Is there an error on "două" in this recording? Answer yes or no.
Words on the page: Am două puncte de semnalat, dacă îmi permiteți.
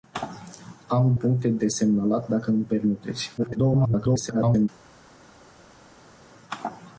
yes